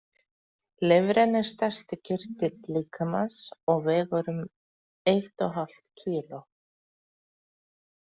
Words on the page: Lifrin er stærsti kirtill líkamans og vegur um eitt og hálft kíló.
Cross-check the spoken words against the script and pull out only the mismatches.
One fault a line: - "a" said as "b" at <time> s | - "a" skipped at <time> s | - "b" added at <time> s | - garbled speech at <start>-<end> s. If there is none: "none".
none